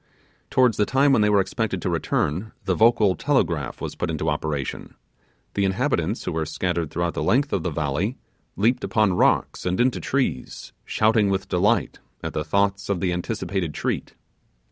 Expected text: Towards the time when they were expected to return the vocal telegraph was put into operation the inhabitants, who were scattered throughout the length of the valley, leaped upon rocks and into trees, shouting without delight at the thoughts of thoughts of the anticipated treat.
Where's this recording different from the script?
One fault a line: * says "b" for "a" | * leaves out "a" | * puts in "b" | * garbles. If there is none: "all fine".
* says "with" for "without"
* leaves out "thoughts of"